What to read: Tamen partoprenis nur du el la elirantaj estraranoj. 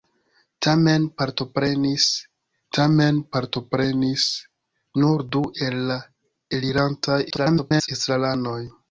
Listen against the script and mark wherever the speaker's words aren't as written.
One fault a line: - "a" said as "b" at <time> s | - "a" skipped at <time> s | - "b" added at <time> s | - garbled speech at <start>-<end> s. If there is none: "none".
- "tamen partoprenis" added at 2.8 s
- garbled speech at 7.3-7.9 s